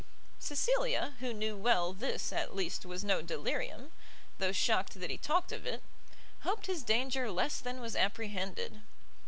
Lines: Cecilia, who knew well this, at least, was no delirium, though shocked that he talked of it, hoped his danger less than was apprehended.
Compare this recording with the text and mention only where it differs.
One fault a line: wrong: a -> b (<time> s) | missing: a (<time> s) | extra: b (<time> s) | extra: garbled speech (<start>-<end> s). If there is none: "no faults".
no faults